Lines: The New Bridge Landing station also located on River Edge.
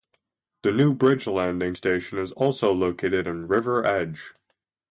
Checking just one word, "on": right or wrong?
wrong